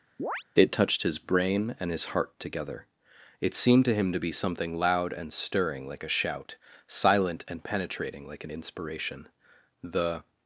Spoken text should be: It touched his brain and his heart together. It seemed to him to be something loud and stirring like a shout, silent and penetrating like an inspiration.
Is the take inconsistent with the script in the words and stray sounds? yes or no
yes